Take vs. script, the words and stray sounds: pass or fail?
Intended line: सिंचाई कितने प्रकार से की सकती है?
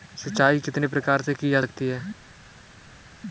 fail